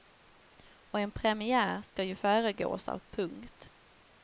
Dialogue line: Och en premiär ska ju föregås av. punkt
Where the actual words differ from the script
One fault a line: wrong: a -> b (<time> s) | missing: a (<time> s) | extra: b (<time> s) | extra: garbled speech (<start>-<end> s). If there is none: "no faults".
no faults